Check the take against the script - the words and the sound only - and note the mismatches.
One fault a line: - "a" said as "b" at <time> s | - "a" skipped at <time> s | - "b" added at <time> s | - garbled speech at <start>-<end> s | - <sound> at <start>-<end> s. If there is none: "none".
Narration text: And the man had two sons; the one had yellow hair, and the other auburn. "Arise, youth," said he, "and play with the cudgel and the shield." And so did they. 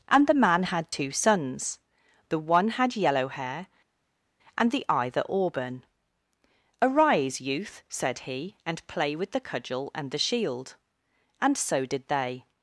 - "other" said as "either" at 4.9 s